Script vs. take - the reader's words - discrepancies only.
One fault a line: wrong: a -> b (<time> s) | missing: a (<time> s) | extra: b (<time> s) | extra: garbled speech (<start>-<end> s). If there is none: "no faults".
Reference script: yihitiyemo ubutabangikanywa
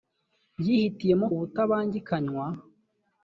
no faults